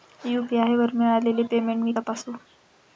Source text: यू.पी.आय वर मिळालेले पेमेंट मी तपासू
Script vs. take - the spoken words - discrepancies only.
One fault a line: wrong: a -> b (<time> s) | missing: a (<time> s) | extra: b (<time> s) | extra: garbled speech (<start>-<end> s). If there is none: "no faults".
no faults